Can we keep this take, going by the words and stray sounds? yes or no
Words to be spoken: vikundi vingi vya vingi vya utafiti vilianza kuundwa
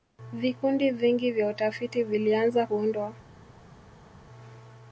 no